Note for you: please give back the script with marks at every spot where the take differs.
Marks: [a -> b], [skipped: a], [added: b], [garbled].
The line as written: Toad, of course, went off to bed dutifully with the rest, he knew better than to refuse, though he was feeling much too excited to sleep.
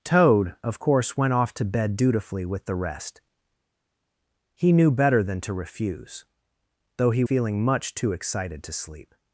Toad, of course, went off to bed dutifully with the rest, he knew better than to refuse, though he [skipped: was] feeling much too excited to sleep.